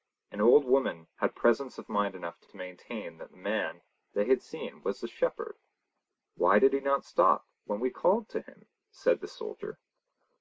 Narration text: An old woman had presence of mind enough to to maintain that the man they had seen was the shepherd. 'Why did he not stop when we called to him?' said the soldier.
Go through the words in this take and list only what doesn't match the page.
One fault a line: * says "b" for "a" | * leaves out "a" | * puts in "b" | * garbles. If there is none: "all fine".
all fine